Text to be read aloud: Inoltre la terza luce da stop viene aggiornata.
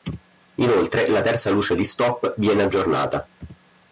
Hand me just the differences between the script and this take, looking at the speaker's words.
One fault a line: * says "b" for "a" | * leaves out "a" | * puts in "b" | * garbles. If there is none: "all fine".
* says "di" for "da"